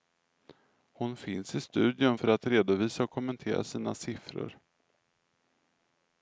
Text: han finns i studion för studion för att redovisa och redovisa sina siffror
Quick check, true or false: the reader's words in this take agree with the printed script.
false